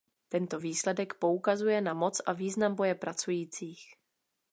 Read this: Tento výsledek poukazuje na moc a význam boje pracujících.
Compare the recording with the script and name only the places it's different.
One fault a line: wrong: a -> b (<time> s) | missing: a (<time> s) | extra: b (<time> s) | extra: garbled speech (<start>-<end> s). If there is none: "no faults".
no faults